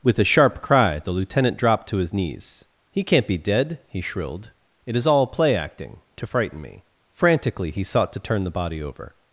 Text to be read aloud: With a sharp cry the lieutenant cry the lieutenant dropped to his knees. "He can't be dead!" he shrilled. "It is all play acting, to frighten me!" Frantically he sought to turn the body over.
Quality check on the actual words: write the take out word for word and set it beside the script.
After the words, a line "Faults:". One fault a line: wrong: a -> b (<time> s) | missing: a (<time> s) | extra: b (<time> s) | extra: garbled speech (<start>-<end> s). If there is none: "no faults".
With a sharp cry the lieutenant dropped to his knees. "He can't be dead!" he shrilled. "It is all play acting, to frighten me!" Frantically he sought to turn the body over.
Faults:
missing: cry the lieutenant (1.6 s)